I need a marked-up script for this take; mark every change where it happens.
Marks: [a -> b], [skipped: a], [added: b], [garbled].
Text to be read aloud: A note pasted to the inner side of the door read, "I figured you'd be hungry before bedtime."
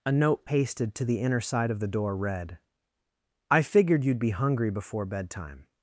A note pasted to the inner side of the door read, "I figured you'd be hungry before bedtime."